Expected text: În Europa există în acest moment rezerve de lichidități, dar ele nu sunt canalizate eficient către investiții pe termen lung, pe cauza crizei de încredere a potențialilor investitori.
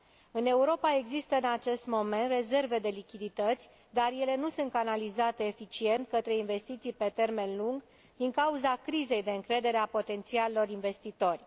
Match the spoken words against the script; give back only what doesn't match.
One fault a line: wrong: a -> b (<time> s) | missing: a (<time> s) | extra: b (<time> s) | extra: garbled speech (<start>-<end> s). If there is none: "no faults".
wrong: pe -> din (8.2 s)